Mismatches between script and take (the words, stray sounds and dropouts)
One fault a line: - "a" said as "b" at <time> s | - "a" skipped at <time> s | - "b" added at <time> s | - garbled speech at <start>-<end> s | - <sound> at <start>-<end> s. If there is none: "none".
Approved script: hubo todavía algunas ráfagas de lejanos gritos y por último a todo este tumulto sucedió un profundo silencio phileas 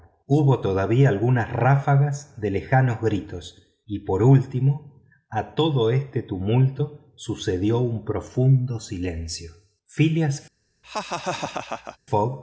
- laugh at 10.8-12.0 s